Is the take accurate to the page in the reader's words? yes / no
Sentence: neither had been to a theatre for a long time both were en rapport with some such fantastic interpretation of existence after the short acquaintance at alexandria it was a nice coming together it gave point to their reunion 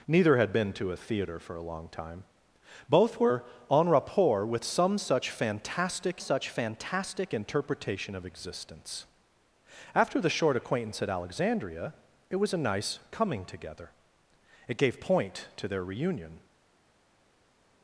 no